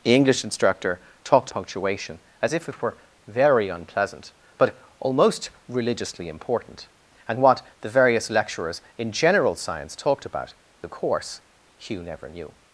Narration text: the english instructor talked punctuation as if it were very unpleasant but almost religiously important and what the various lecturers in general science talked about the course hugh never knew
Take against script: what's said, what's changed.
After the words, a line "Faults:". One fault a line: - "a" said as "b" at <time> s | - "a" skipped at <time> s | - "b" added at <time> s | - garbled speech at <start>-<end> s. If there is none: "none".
the english instructor talked punctuation as if it were very unpleasant but almost religiously important and what the various lecturers in general science talked about the course hugh never knew
Faults:
none